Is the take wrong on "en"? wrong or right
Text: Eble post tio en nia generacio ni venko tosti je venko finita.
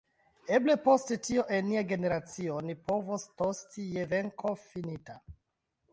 right